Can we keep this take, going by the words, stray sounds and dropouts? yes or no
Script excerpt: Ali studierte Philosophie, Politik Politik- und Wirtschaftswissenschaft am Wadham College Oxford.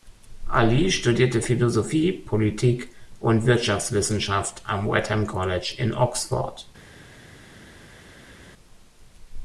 no